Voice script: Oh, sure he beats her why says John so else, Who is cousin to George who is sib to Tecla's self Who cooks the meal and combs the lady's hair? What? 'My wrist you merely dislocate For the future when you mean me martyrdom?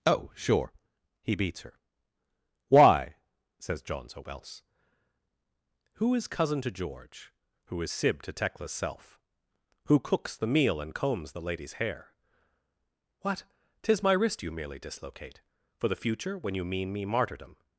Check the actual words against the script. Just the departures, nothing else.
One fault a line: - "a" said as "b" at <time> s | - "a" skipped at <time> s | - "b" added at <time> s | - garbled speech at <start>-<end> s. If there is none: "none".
- "Tis" added at 13.8 s